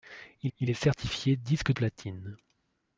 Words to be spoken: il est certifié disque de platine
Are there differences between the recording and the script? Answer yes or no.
yes